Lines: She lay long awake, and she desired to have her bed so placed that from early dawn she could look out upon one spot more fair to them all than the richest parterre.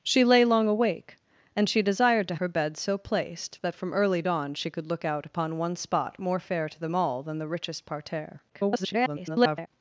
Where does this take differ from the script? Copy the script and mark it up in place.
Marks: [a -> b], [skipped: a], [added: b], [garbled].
She lay long awake, and she desired to [skipped: have] her bed so placed that from early dawn she could look out upon one spot more fair to them all than the richest parterre. [garbled]